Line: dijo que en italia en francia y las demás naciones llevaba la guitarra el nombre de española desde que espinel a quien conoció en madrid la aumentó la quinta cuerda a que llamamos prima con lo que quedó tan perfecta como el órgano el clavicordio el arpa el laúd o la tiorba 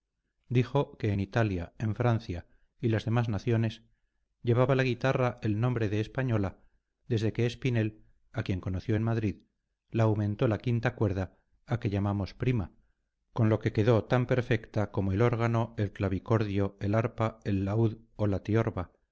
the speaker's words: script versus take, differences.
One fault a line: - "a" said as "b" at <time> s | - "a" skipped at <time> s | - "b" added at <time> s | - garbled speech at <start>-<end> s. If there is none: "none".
none